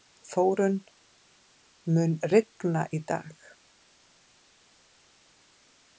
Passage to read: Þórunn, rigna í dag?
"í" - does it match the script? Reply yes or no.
yes